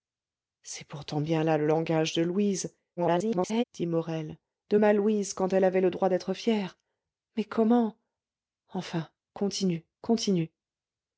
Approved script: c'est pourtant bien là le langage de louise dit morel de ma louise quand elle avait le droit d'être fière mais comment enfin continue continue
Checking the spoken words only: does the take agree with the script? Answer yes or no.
no